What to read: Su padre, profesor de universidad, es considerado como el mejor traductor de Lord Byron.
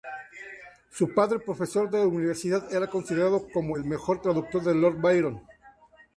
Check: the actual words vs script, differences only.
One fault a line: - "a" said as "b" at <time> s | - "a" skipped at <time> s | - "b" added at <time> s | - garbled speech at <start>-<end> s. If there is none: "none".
- "es" said as "era" at 2.7 s